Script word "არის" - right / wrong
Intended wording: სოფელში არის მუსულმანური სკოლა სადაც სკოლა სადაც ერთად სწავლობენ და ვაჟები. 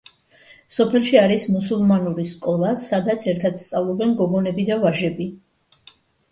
right